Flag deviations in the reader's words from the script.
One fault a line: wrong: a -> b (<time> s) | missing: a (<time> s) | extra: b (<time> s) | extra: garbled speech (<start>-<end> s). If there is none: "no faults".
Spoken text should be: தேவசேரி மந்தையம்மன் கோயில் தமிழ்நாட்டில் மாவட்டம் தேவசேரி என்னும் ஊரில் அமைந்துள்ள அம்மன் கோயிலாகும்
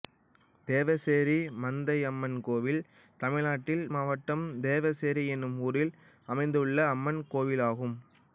no faults